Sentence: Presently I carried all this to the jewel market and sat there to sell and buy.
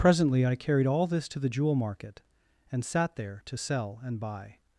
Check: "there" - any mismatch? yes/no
no